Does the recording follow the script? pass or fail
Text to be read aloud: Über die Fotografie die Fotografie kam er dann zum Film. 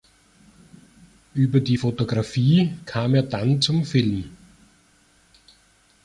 fail